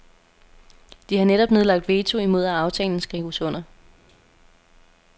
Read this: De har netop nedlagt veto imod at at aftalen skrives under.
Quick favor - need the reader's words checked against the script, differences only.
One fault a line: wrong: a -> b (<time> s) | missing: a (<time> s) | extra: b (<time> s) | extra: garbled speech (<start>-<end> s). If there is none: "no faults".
missing: at (2.5 s)